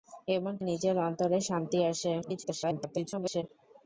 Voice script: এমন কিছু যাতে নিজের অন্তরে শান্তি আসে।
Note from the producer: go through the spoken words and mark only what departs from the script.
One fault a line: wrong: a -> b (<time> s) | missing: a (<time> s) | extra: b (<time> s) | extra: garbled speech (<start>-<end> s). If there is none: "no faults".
missing: কিছু যাতে (0.5 s)
extra: garbled speech (2.2-3.4 s)